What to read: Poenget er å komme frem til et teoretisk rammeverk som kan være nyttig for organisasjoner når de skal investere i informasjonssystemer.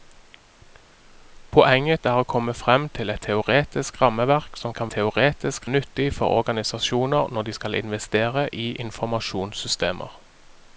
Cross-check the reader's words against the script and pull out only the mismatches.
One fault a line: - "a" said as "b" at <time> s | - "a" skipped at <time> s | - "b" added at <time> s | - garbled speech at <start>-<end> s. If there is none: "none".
- "være" said as "teoretisk" at 4.9 s